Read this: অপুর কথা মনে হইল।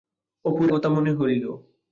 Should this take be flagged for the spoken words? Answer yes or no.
no